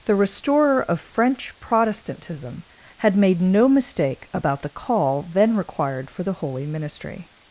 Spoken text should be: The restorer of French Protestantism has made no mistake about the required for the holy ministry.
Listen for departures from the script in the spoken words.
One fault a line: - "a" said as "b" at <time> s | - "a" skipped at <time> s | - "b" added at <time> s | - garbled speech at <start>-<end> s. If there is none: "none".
- "has" said as "had" at 3.0 s
- "call then" added at 4.7 s